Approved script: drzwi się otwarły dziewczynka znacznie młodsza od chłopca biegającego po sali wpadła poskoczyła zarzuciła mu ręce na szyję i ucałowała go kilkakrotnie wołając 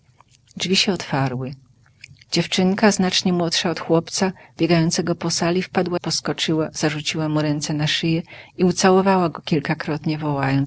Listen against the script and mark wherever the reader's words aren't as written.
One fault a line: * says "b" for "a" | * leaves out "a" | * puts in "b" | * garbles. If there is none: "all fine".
all fine